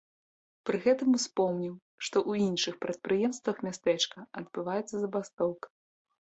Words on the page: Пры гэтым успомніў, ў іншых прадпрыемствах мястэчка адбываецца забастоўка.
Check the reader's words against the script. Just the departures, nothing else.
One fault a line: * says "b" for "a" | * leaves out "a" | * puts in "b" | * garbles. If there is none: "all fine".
* puts in "што"